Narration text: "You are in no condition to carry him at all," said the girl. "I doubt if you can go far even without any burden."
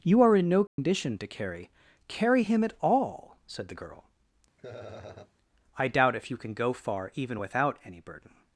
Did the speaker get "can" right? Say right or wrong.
right